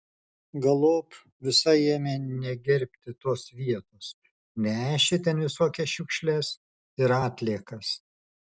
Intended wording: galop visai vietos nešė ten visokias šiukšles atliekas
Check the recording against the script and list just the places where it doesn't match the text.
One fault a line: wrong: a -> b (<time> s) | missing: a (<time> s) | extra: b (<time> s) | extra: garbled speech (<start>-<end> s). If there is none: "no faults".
extra: ėmė negerbti tos (1.9 s)
extra: ir (7.1 s)